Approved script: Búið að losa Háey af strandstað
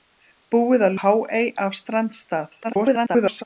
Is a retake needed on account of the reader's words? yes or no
yes